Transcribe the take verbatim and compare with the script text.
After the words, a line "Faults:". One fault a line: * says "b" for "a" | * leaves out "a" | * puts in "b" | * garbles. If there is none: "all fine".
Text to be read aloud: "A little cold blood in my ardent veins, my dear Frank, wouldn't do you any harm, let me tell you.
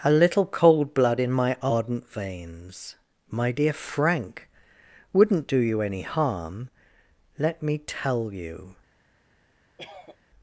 "A little cold blood in my ardent veins, my dear Frank, wouldn't do you any harm, let me tell you.
Faults:
all fine